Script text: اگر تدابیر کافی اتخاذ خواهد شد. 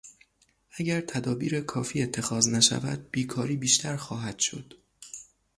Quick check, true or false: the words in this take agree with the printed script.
false